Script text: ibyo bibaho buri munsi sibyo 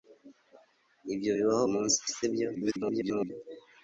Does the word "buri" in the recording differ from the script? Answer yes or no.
yes